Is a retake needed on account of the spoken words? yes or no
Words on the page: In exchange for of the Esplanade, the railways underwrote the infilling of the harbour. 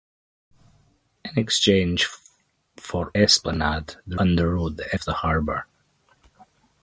yes